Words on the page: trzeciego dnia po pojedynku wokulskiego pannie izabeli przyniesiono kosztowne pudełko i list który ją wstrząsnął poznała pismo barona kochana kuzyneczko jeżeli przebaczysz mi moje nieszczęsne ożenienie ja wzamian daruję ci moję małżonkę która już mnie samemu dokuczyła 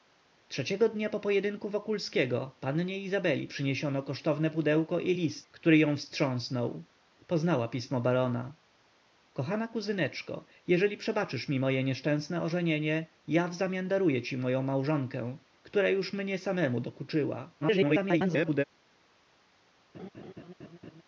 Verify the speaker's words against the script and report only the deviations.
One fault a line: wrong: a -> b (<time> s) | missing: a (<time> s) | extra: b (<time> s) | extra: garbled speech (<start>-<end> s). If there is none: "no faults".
extra: garbled speech (17.6-18.6 s)